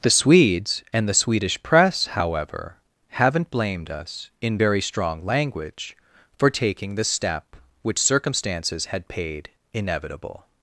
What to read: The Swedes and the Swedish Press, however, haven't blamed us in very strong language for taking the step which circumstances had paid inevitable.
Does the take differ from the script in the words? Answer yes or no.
no